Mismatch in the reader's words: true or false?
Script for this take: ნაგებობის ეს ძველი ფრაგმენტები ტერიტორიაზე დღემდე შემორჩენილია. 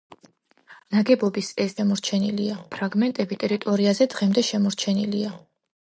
true